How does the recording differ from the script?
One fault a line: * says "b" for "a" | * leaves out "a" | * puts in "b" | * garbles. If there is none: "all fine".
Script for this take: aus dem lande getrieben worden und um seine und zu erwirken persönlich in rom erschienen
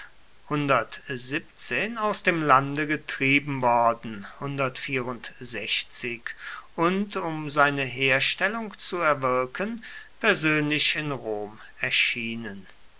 * says "herstellung" for "und"